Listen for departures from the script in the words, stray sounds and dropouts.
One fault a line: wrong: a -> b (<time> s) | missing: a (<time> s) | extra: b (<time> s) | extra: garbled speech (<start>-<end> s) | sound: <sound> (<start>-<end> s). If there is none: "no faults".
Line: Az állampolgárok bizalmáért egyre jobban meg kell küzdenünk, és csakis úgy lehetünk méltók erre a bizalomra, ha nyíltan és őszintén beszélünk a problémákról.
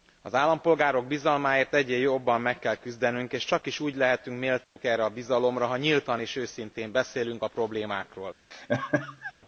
sound: dropout (4.6-4.8 s)
sound: laugh (8.5-9.3 s)